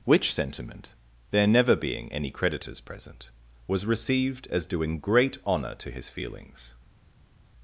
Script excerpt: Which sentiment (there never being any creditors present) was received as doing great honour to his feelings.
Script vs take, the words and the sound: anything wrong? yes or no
no